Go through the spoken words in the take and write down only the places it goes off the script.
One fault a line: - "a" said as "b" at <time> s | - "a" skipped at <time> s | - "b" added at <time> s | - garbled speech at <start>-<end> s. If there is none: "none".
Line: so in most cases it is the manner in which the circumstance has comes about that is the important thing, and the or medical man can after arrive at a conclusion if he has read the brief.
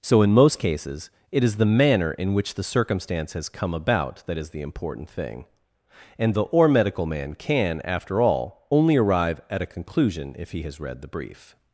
- "comes" said as "come" at 3.5 s
- "all only" added at 8.2 s